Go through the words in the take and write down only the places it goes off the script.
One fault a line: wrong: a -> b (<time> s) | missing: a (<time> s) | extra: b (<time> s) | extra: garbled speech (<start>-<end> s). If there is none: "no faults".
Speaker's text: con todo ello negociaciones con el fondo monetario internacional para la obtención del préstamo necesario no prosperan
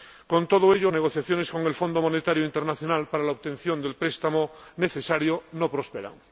no faults